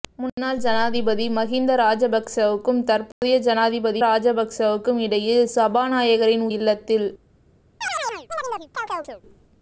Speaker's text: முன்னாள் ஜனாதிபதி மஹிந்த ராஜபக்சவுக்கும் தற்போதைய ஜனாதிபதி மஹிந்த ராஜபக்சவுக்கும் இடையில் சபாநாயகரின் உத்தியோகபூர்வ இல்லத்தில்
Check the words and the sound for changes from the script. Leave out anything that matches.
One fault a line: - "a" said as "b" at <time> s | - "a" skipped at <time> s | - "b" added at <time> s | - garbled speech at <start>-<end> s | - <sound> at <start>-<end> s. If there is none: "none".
- dropout at 3.1-3.2 s
- "மஹிந்த" skipped at 4.0 s
- "உத்தியோகபூர்வ" skipped at 6.5 s
- chirp at 7.8-9.2 s